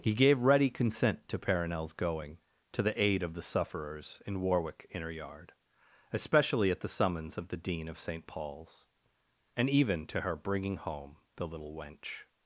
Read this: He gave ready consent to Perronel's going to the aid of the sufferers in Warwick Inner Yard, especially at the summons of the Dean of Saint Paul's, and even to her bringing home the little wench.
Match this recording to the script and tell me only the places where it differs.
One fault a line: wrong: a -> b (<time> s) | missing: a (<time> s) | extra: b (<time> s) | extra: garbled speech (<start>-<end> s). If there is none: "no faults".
no faults